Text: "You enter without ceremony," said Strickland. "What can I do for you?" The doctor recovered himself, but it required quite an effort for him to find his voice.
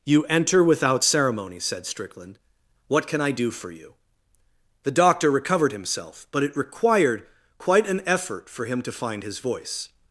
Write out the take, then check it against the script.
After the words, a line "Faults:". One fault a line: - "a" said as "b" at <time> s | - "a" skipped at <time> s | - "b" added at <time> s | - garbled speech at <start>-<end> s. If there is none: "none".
"You enter without ceremony," said Strickland. "What can I do for you?" The doctor recovered himself, but it required quite an effort for him to find his voice.
Faults:
none